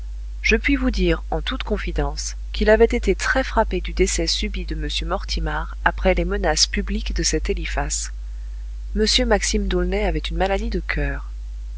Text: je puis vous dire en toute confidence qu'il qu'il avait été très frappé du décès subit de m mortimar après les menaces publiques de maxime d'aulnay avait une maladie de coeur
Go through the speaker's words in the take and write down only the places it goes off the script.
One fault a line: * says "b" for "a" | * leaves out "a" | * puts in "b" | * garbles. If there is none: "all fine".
* leaves out "qu'il"
* puts in "cet eliphas m"